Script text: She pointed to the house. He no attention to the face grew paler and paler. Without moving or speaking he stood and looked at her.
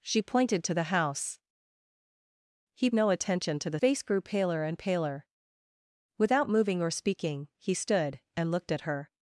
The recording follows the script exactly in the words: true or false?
true